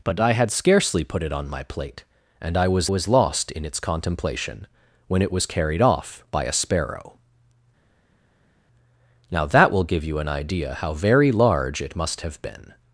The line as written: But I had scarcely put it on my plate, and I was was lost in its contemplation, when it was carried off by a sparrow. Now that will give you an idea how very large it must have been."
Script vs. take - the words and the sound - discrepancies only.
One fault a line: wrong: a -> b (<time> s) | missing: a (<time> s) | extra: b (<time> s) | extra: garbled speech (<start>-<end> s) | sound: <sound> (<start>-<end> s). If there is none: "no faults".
no faults